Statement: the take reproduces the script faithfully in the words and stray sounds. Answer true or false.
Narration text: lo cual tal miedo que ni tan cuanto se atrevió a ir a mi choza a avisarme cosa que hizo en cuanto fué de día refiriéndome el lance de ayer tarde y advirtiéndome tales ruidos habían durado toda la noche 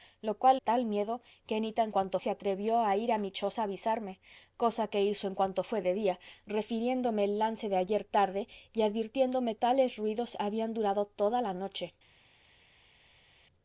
true